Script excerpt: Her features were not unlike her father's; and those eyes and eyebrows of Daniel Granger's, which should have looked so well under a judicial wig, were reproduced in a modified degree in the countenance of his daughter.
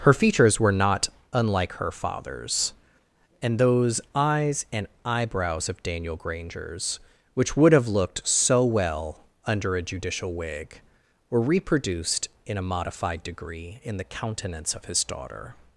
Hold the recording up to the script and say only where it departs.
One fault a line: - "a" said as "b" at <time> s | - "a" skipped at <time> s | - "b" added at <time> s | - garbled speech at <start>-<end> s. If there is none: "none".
- "should" said as "would" at 7.6 s